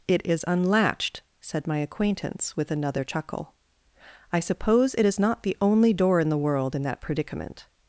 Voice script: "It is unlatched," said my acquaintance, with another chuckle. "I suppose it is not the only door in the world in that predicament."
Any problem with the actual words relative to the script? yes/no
no